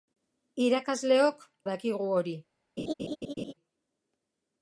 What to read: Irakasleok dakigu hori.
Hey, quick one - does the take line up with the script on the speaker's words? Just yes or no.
yes